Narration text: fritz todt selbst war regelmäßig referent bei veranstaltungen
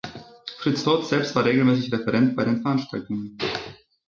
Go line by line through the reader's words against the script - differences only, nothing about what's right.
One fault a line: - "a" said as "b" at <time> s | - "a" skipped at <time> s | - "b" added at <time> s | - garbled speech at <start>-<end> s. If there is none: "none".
- "den" added at 2.4 s